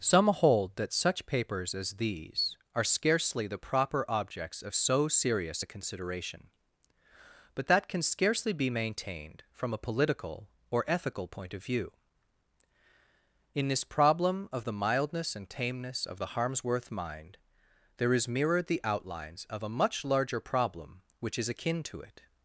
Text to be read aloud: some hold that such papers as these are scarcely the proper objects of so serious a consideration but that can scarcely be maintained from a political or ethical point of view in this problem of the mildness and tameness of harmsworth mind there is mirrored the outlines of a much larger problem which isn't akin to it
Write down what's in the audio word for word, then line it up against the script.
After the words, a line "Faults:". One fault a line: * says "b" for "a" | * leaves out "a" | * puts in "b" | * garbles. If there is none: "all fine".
some hold that such papers as these are scarcely the proper objects of so serious a consideration but that can scarcely be maintained from a political or ethical point of view in this problem of the mildness and tameness of the harmsworth mind there is mirrored the outlines of a much larger problem which is akin to it
Faults:
* puts in "the"
* says "is" for "isn't"